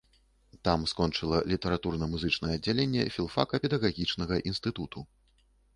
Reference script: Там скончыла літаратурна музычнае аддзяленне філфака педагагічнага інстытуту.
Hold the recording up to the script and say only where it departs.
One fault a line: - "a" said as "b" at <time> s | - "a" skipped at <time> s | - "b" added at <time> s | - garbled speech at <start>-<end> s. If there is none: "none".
none